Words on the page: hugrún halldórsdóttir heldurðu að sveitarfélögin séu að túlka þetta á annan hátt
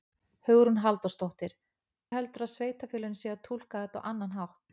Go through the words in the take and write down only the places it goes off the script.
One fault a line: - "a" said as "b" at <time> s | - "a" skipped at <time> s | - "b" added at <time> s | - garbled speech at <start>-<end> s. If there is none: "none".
none